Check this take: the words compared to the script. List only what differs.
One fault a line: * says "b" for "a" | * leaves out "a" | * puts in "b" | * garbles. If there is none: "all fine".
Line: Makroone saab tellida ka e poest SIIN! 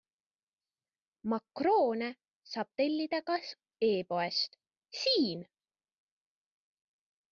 all fine